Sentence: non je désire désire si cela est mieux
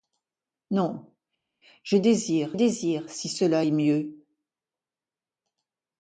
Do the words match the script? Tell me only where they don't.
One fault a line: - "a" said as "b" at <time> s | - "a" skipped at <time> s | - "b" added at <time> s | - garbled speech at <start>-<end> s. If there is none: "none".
none